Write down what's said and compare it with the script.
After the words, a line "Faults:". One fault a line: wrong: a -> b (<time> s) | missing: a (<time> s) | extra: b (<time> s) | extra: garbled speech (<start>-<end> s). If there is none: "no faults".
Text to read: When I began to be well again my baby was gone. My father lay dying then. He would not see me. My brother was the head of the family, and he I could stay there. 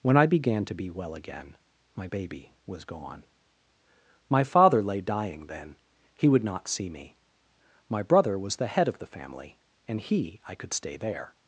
When I began to be well again my baby was gone. My father lay dying then. He would not see me. My brother was the head of the family, and he I could stay there.
Faults:
no faults